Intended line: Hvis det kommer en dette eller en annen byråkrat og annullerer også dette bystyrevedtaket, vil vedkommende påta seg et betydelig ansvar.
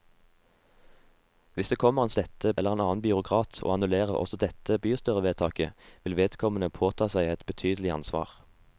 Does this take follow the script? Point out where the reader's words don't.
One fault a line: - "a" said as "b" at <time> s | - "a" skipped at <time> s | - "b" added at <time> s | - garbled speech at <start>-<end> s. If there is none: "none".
none